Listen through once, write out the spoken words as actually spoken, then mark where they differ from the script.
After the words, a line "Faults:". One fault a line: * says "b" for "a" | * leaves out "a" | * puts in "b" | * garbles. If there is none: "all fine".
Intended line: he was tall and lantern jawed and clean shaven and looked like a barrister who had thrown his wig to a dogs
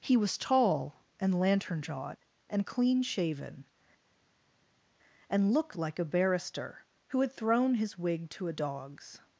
he was tall and lantern jawed and clean shaven and looked like a barrister who had thrown his wig to a dogs
Faults:
all fine